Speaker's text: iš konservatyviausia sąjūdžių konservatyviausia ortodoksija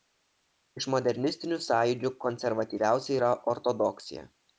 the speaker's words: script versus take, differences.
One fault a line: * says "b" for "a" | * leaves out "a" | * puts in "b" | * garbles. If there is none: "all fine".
* says "modernistinių" for "konservatyviausia"
* puts in "yra"